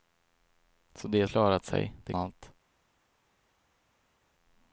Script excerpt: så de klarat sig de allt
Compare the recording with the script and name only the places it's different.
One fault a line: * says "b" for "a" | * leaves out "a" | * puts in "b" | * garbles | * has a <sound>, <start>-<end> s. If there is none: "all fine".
all fine